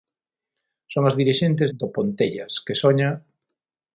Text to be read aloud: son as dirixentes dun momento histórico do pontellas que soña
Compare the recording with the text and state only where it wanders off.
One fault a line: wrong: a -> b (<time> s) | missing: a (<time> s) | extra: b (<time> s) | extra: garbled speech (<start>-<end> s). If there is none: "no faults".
missing: dun momento histórico (1.7 s)